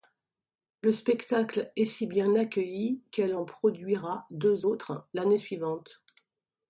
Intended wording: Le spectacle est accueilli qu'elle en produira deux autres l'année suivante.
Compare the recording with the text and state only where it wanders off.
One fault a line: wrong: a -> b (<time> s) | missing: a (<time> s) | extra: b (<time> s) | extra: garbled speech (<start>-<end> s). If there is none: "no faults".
extra: si bien (1.9 s)